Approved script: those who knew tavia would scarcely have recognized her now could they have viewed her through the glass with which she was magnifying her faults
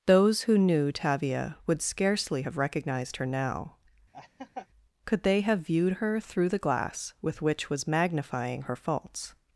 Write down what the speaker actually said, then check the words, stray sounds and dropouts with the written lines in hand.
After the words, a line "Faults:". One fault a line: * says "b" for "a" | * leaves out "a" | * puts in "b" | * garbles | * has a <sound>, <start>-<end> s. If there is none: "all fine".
those who knew tavia would scarcely have recognized her now could they have viewed her through the glass with which was magnifying her faults
Faults:
* has a laugh, 4.1-4.7 s
* leaves out "she"